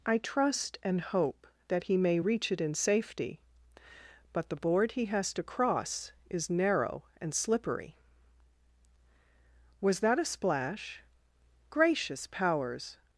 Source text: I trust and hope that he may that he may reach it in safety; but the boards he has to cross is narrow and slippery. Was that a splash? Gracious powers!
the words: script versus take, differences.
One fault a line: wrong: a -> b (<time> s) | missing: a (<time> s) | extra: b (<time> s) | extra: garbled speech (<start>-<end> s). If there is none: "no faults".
missing: that he may (2.2 s)
wrong: boards -> board (4.5 s)